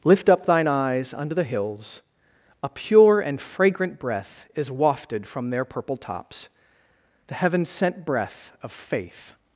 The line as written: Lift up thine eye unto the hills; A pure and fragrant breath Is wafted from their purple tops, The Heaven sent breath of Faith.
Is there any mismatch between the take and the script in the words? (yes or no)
yes